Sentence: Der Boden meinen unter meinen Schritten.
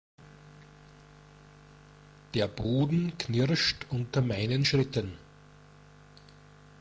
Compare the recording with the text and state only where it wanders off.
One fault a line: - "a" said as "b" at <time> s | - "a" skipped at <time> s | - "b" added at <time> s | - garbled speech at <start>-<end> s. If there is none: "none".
- "meinen" said as "knirscht" at 3.2 s